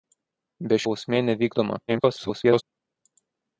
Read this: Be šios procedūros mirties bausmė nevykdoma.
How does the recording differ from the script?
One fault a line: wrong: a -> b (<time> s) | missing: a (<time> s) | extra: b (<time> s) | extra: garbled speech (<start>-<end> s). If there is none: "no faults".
missing: šios procedūros mirties (0.8 s)
extra: garbled speech (1.9-2.6 s)